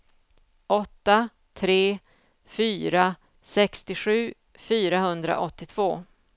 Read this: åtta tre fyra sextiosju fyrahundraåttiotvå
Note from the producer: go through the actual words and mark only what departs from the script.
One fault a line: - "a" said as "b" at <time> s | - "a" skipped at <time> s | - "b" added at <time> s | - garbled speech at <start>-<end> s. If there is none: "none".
none